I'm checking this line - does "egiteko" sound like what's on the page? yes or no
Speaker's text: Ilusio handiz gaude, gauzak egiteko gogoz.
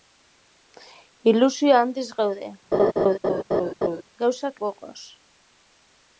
no